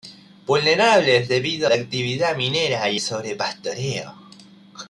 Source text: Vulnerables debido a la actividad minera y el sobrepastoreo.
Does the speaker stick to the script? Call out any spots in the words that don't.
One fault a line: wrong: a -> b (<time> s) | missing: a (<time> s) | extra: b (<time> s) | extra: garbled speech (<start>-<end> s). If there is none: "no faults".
missing: a (1.7 s)
missing: el (3.0 s)